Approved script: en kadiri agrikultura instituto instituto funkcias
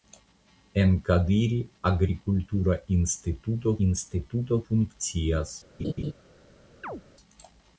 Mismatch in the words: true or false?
false